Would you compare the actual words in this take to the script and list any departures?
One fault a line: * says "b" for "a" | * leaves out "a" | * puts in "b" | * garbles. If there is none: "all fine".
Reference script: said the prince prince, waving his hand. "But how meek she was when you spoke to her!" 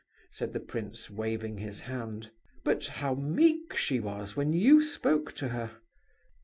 * leaves out "prince"